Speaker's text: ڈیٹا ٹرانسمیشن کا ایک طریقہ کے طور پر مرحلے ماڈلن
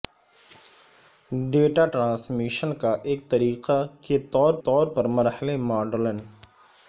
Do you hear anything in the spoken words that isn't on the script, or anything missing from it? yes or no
yes